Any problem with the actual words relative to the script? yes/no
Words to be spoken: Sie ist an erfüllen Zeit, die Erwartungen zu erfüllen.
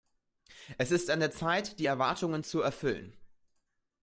yes